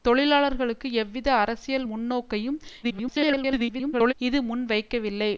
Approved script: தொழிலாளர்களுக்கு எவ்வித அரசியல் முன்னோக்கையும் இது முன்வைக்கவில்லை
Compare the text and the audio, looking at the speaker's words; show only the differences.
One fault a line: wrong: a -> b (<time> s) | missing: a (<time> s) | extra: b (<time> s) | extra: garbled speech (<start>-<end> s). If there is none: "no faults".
extra: garbled speech (2.8-4.1 s)